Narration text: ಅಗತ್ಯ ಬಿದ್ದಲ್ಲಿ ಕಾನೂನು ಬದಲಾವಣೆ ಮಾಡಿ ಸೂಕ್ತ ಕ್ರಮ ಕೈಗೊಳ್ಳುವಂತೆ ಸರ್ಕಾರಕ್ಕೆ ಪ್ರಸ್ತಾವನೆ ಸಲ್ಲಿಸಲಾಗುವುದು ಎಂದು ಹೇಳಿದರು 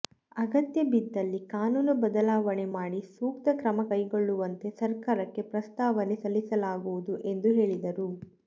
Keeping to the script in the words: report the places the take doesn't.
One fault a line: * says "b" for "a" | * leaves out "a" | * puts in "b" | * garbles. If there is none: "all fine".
all fine